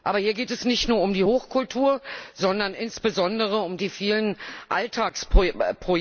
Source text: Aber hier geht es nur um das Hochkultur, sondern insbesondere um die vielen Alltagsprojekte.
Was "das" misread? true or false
true